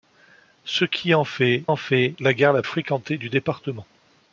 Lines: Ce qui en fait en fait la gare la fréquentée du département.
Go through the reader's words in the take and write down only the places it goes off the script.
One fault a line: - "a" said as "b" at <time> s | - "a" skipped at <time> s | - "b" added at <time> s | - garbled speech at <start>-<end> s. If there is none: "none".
none